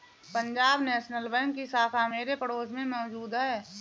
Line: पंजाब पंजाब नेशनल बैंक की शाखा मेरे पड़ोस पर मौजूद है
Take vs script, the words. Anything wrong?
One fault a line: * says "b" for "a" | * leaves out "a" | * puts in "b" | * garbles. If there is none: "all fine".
* leaves out "पंजाब"
* says "में" for "पर"